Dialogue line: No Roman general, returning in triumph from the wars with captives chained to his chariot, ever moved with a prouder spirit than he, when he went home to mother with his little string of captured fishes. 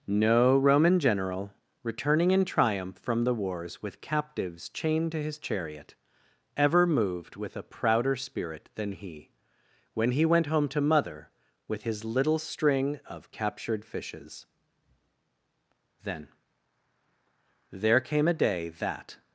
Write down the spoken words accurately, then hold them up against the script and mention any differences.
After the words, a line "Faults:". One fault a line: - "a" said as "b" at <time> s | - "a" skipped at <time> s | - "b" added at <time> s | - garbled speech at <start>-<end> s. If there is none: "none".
No Roman general, returning in triumph from the wars with captives chained to his chariot, ever moved with a prouder spirit than he, when he went home to mother with his little string of captured fishes. Then there came a day that
Faults:
- "Then there came a day that" added at 16.0 s